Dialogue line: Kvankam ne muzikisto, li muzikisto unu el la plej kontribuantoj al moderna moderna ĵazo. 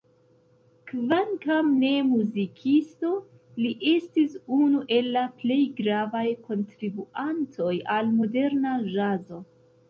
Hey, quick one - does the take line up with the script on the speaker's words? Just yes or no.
no